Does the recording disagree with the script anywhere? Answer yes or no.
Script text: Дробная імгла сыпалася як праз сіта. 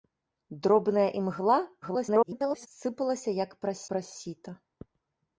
yes